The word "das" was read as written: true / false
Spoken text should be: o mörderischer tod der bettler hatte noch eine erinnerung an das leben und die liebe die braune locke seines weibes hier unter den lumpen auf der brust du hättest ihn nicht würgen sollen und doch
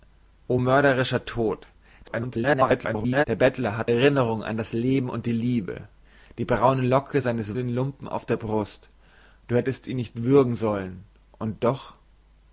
true